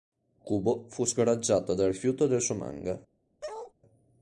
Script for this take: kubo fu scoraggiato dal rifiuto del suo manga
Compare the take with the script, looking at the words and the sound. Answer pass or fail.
fail